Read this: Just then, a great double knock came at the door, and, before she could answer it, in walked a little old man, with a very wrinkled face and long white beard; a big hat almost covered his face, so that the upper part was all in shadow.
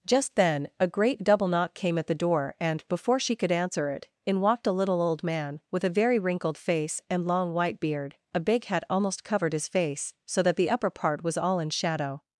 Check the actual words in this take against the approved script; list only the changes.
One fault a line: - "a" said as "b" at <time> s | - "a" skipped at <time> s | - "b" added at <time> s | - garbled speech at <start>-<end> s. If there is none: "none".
none